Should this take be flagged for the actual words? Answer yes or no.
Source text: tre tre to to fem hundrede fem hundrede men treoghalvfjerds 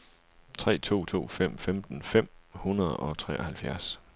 yes